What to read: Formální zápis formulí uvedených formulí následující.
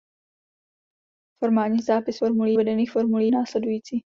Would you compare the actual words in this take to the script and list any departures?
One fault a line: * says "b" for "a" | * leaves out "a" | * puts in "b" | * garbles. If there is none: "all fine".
all fine